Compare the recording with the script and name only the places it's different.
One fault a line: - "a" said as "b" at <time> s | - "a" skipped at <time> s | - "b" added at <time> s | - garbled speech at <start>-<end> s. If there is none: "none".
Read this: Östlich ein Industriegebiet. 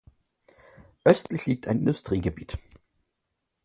- "liegt" added at 1.4 s